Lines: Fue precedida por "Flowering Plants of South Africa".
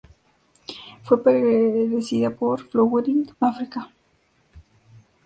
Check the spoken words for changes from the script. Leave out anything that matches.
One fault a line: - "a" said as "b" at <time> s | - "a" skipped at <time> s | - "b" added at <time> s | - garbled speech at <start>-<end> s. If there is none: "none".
- "Plants of South" skipped at 3.3 s